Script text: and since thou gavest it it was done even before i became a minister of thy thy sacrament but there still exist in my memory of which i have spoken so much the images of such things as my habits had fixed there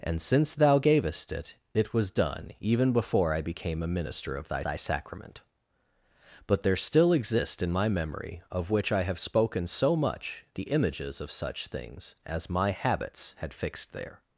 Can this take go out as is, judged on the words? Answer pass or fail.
pass